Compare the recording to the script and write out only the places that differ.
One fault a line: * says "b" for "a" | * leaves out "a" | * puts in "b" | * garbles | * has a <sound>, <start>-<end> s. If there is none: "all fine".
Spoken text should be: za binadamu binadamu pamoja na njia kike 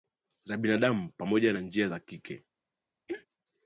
* leaves out "binadamu"
* puts in "za"
* has a throat clearing, 3.1-3.3 s